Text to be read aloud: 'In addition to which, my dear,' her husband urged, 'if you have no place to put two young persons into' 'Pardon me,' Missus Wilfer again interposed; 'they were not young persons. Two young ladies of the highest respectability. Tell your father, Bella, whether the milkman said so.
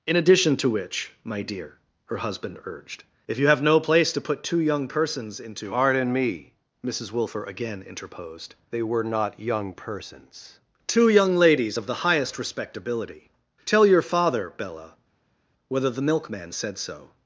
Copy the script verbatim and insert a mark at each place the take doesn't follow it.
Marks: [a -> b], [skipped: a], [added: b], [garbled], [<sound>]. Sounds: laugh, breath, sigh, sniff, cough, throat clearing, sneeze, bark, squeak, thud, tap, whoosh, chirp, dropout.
'In addition to which, my dear,' her husband urged, 'if you have no place to put two young persons into' 'Pardon me,' Missus Wilfer again interposed; 'they were not young persons. Two young ladies of the highest respectability. Tell your father, Bella, whether the milkman said so.